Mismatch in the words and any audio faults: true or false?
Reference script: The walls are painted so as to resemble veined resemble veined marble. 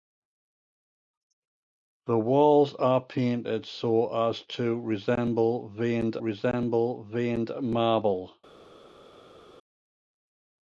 false